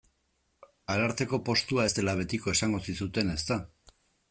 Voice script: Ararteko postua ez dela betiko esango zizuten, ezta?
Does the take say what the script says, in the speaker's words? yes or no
yes